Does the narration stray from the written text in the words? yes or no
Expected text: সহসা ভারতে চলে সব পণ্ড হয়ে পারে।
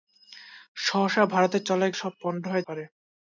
no